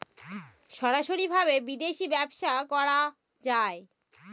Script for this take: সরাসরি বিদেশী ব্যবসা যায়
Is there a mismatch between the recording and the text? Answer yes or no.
yes